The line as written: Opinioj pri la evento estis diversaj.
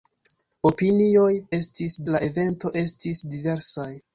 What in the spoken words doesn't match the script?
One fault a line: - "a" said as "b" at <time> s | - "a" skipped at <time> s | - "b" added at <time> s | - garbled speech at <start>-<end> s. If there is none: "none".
- "pri" said as "estis" at 1.6 s